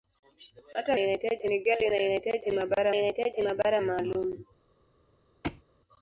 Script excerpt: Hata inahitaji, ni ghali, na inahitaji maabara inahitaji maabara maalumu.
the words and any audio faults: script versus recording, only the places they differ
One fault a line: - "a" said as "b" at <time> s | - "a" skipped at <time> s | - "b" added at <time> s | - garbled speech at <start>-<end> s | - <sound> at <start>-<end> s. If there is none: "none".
- thud at 5.4-5.6 s